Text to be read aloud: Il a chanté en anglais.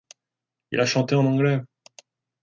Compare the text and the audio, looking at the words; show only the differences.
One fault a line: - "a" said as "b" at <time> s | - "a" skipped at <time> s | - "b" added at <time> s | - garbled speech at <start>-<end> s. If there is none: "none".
none